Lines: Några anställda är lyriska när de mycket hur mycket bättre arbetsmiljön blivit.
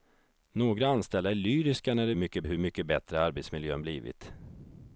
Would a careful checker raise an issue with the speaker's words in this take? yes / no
no